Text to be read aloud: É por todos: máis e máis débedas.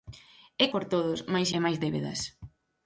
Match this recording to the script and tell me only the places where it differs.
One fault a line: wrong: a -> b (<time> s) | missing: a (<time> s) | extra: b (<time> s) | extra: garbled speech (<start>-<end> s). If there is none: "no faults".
no faults